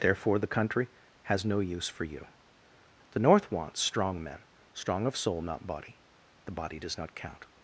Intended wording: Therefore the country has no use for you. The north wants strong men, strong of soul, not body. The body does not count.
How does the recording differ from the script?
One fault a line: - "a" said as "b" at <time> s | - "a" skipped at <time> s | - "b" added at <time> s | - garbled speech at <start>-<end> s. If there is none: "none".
none